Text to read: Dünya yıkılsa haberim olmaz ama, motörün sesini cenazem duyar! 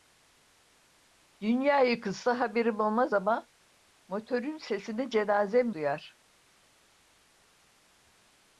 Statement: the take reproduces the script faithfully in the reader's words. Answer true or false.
true